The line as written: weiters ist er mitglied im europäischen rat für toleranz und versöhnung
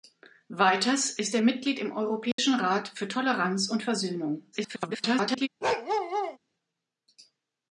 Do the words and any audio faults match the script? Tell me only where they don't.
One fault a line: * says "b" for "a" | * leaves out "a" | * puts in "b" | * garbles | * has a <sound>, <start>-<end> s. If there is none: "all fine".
* has a dropout, 2.3-2.4 s
* garbles
* has a bark, 5.6-6.4 s